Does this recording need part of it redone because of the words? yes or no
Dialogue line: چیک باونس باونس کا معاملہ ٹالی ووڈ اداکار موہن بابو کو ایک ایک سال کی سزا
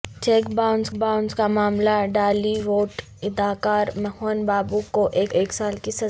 no